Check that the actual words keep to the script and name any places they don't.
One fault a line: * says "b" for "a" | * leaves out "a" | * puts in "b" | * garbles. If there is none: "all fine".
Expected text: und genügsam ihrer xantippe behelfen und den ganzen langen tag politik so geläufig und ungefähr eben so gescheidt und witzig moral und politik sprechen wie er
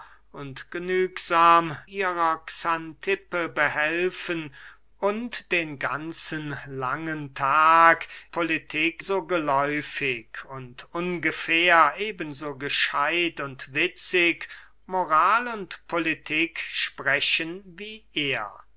all fine